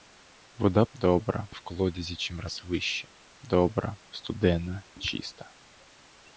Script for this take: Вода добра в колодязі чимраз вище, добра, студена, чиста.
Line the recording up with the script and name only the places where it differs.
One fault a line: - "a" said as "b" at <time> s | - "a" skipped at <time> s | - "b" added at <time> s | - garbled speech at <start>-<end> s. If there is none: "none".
none